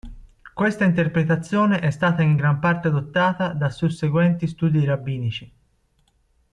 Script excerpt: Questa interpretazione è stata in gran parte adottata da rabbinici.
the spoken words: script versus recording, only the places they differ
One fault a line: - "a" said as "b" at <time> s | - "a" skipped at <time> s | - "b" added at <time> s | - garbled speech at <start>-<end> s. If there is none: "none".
- "susseguenti studi" added at 3.7 s